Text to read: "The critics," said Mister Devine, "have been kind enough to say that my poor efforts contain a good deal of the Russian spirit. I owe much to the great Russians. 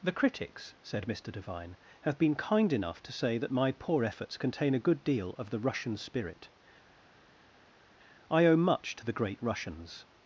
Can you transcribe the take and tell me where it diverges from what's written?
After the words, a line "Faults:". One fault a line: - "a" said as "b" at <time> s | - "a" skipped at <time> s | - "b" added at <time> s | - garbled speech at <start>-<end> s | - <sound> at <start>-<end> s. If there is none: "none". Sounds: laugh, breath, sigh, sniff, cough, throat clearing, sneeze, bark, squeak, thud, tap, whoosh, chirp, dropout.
"The critics," said Mister Devine, "have been kind enough to say that my poor efforts contain a good deal of the Russian spirit. I owe much to the great Russians.
Faults:
none